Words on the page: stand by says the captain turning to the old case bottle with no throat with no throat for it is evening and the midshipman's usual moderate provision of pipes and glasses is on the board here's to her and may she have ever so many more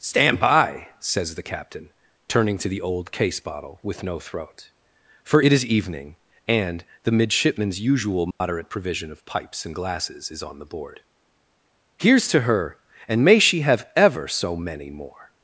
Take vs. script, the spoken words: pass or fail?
fail